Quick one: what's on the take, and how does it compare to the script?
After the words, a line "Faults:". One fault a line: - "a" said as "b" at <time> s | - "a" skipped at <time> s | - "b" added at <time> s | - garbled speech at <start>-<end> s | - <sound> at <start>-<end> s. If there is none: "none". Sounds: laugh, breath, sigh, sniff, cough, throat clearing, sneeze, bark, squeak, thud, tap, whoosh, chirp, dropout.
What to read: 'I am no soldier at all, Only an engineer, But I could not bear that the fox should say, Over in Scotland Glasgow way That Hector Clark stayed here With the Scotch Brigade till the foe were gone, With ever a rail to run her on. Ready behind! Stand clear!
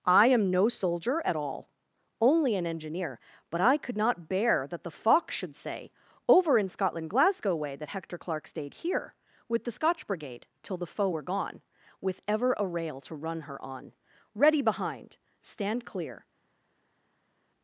'I am no soldier at all, Only an engineer, But I could not bear that the fox should say, Over in Scotland Glasgow way That Hector Clark stayed here With the Scotch Brigade till the foe were gone, With ever a rail to run her on. Ready behind! Stand clear!
Faults:
none